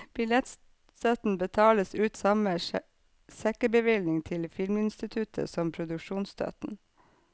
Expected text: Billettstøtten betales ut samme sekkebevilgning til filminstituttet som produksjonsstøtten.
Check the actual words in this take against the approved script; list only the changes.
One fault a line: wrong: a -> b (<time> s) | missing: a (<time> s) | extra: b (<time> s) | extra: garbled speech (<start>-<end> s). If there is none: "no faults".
no faults